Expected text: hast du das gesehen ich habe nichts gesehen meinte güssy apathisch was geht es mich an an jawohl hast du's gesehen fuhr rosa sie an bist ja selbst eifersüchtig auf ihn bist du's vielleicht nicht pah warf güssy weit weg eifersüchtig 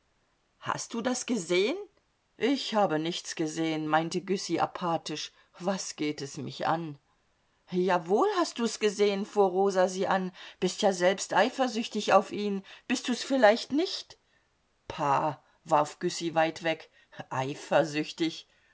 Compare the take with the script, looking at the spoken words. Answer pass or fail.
fail